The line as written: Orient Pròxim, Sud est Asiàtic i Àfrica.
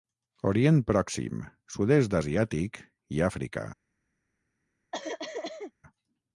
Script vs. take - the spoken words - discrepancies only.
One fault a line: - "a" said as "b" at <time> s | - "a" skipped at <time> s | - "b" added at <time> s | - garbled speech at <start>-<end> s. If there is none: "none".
none